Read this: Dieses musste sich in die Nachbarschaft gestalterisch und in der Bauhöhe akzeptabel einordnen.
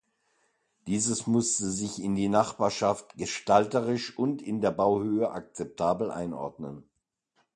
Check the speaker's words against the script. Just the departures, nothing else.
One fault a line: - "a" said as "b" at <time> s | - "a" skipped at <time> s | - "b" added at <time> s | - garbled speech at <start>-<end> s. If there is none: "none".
none